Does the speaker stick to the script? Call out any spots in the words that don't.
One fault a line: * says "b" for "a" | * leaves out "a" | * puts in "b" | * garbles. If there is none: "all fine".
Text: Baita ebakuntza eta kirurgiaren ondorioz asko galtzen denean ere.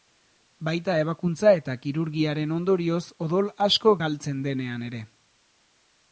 * puts in "odol"